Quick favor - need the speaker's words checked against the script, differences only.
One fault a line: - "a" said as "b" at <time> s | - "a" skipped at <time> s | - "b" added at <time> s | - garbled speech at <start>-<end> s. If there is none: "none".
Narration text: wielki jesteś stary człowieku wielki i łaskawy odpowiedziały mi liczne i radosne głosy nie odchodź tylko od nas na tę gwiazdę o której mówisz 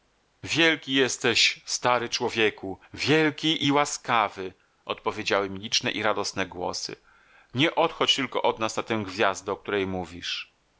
none